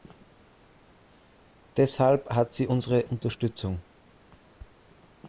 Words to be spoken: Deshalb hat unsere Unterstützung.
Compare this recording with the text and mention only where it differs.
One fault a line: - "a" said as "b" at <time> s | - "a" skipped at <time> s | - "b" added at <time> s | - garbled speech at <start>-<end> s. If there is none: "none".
- "sie" added at 2.5 s